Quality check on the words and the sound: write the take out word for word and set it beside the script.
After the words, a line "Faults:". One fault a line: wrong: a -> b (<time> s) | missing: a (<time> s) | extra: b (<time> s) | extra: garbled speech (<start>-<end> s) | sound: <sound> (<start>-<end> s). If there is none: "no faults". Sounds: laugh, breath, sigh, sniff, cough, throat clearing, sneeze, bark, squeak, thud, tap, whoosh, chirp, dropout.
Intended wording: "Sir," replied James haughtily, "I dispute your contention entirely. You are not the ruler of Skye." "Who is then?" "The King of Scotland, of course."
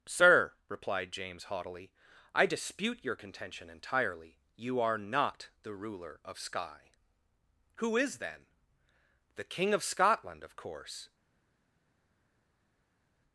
"Sir," replied James haughtily, "I dispute your contention entirely. You are not the ruler of Skye." "Who is then?" "The King of Scotland, of course."
Faults:
no faults